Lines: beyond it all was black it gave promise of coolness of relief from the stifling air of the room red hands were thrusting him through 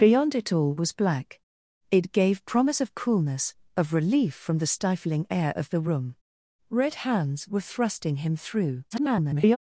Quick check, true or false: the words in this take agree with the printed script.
false